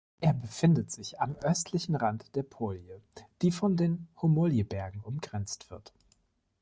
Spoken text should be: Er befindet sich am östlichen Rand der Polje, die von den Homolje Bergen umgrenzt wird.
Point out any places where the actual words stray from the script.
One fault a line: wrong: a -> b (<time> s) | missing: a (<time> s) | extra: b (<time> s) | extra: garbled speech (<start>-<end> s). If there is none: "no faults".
no faults